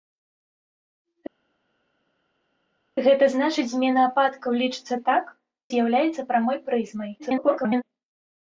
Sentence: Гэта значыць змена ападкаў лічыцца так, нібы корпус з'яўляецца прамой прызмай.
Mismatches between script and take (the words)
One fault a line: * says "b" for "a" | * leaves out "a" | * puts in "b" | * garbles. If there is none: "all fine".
* leaves out "нібы корпус"
* garbles